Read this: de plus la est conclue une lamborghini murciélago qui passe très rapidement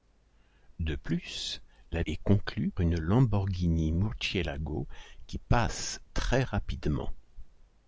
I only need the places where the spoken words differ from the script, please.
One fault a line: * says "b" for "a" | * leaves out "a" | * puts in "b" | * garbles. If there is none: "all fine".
all fine